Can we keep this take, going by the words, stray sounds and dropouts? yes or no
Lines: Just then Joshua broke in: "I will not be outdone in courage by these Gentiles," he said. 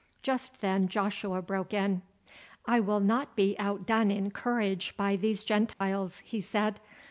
no